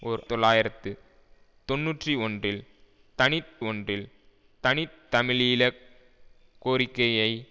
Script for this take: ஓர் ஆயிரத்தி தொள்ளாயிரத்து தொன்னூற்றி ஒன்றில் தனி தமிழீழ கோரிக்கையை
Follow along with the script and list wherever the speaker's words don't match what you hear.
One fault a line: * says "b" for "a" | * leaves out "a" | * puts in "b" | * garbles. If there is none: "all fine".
* leaves out "ஆயிரத்தி"
* puts in "ஒன்றில் தனி"